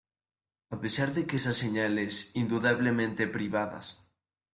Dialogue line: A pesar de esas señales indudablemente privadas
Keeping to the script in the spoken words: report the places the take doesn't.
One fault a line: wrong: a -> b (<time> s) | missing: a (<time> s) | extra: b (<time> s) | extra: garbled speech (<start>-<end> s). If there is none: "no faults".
extra: que (1.3 s)